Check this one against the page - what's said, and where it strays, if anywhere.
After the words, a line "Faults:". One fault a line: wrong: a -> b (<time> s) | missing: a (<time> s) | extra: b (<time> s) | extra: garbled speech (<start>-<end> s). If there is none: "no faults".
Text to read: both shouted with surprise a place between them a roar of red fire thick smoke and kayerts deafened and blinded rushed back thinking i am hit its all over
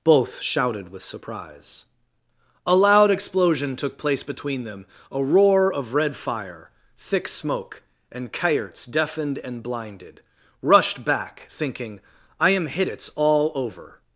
both shouted with surprise a loud explosion took place between them a roar of red fire thick smoke and kayerts deafened and blinded rushed back thinking i am hit its all over
Faults:
extra: loud explosion took (2.8 s)